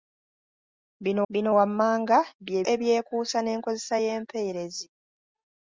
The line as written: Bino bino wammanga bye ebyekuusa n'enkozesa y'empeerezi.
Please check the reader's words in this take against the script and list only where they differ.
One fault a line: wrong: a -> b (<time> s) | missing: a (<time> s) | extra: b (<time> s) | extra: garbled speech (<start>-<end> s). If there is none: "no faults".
no faults